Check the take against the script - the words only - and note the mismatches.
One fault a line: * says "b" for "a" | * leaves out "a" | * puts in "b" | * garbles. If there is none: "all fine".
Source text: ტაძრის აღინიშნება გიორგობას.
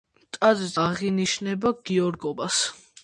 all fine